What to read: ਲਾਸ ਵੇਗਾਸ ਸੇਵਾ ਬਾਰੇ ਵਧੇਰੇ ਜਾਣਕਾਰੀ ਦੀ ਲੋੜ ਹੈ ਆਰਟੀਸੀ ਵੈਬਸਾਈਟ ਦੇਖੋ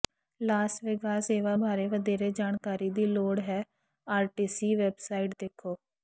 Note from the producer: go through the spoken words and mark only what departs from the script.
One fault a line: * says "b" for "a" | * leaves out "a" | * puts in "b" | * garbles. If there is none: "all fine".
all fine